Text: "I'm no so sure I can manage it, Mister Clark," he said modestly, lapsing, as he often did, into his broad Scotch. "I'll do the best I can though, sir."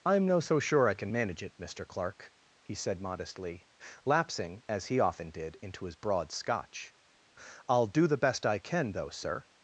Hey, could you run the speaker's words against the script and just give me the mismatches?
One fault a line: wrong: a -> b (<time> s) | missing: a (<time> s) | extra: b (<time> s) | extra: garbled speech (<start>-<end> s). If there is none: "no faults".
no faults